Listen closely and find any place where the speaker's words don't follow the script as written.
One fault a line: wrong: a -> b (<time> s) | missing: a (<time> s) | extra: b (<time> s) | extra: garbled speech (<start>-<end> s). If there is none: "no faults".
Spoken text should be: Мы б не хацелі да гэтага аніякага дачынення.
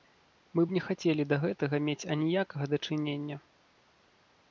extra: мець (1.9 s)